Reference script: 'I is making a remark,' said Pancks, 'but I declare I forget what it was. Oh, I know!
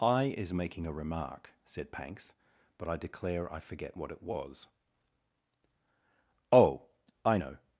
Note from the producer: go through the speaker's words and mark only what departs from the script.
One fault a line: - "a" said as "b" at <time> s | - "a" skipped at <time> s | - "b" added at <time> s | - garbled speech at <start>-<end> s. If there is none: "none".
none